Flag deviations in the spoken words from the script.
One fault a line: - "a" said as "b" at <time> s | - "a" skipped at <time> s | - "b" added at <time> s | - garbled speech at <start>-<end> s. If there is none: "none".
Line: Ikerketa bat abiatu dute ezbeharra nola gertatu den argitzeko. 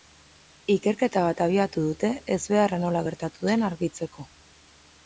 none